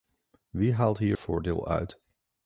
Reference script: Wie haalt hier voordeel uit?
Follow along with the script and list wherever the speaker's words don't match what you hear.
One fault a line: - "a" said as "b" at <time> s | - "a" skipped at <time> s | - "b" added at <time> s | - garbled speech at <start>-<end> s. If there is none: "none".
none